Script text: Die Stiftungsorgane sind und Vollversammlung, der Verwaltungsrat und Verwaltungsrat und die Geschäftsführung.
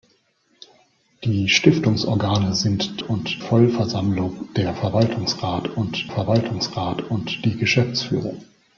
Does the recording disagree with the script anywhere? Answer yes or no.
no